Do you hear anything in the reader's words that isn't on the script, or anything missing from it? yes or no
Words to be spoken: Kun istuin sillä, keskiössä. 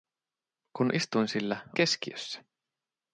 no